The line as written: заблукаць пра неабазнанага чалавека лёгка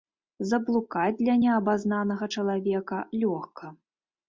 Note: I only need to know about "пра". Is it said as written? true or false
false